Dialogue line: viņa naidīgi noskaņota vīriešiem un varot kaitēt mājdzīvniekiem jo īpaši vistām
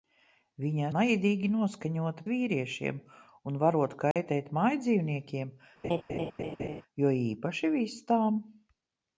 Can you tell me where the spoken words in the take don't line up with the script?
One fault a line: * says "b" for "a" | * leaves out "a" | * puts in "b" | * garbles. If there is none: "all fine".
all fine